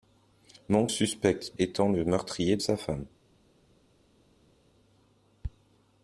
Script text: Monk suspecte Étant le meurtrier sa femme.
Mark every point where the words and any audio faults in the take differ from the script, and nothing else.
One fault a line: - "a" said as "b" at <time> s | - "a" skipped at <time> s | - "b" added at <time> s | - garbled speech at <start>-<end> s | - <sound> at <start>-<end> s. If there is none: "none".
none